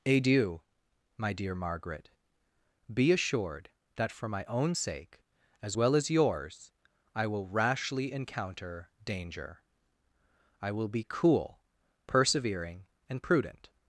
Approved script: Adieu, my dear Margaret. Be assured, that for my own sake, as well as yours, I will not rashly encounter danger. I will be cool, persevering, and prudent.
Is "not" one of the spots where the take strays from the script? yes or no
yes